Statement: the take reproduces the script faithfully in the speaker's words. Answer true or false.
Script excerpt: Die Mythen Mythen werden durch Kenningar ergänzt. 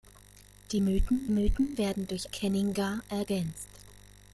true